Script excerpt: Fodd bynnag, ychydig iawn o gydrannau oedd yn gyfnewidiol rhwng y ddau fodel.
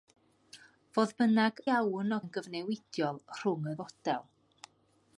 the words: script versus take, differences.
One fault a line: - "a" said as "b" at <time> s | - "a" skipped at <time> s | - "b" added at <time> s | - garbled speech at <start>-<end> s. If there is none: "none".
- "ychydig" skipped at 1.6 s
- "gydrannau oedd" skipped at 2.2 s
- "ddau" skipped at 3.8 s